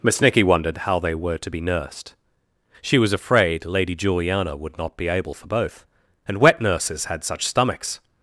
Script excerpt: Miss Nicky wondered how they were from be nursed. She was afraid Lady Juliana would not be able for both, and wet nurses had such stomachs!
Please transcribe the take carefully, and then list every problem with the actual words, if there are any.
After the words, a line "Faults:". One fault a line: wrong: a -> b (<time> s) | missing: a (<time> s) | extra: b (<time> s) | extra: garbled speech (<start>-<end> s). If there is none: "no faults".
Miss Nicky wondered how they were to be nursed. She was afraid Lady Juliana would not be able for both, and wet nurses had such stomachs!
Faults:
wrong: from -> to (1.4 s)